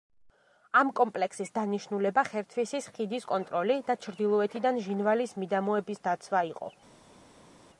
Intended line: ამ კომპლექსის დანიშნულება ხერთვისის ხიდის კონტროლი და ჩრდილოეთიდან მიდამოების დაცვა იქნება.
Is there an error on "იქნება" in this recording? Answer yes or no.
yes